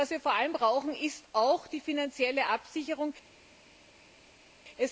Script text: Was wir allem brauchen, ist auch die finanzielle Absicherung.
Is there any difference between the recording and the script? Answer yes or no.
yes